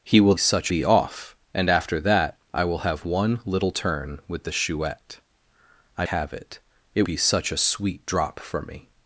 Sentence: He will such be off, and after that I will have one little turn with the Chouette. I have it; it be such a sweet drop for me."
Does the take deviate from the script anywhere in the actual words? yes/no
no